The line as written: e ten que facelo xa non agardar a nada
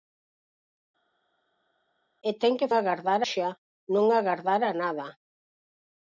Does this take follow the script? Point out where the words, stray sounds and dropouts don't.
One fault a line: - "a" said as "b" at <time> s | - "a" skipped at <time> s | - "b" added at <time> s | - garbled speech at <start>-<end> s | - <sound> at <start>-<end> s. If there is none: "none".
- "facelo" said as "agardar" at 2.8 s